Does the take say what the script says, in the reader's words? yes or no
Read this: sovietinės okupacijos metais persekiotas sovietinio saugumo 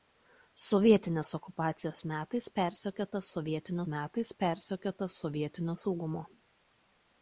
no